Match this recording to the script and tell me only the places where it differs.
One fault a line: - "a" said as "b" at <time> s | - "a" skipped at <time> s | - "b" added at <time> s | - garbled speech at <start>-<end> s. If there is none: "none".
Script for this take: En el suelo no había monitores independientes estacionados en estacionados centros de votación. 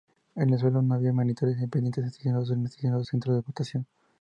none